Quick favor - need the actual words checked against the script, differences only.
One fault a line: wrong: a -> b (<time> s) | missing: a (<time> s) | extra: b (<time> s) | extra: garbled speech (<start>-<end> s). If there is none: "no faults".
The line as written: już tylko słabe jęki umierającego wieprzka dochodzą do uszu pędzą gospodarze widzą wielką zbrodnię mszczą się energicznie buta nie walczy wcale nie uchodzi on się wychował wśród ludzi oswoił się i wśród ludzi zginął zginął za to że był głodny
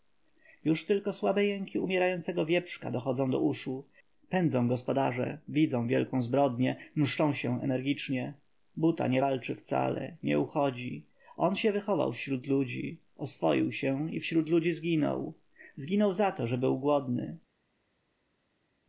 no faults